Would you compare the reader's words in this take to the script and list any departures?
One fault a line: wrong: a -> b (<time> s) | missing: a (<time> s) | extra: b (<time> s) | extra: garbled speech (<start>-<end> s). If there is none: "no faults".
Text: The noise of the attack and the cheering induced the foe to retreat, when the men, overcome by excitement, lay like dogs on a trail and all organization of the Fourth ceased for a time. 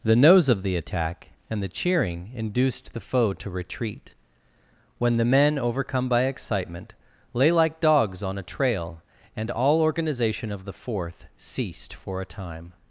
wrong: noise -> nose (0.1 s)